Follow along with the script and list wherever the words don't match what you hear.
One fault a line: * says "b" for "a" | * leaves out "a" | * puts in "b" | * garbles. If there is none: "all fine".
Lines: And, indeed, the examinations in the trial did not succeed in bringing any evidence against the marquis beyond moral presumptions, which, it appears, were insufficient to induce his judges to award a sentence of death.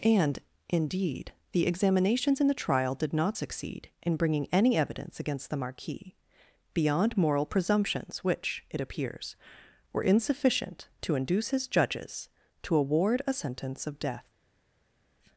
all fine